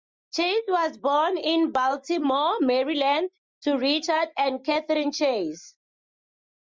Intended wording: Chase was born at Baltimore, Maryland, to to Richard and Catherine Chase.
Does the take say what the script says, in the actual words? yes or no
no